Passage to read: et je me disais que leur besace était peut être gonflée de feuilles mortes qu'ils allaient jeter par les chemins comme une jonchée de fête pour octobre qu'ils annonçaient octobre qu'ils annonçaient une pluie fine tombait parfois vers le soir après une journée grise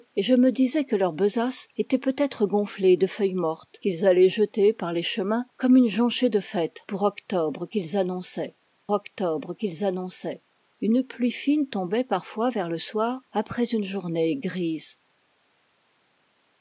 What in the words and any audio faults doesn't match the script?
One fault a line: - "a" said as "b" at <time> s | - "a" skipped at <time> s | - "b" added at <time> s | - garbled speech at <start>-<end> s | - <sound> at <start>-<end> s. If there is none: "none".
none